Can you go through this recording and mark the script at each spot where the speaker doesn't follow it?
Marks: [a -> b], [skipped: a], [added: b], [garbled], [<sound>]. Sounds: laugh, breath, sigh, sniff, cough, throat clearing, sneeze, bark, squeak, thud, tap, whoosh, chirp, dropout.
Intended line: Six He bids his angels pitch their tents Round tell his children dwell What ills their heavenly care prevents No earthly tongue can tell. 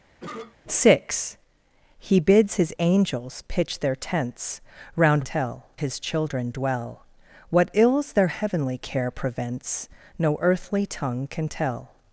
[cough] Six He bids his angels pitch their tents Round tell his children dwell What ills their heavenly care prevents No earthly tongue can tell.